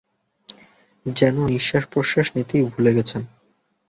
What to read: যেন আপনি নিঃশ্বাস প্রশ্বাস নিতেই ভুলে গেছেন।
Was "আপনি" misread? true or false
true